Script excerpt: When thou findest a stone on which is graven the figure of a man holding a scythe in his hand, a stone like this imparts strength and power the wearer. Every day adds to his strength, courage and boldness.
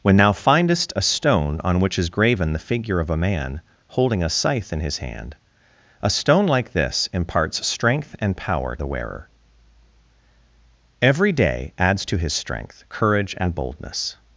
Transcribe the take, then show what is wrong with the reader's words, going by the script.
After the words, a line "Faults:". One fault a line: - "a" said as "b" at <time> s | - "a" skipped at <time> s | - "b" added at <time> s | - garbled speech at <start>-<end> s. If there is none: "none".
When thou findest a stone on which is graven the figure of a man holding a scythe in his hand, a stone like this imparts strength and power the wearer. Every day adds to his strength, courage and boldness.
Faults:
none